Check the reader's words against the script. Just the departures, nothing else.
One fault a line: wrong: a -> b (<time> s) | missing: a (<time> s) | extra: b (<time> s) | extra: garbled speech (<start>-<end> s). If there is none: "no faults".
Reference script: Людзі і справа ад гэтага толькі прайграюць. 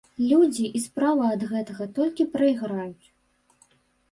no faults